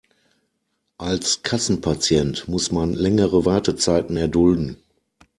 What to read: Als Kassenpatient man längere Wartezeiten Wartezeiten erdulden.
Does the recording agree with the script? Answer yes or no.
no